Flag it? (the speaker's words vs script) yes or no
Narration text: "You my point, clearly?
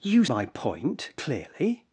no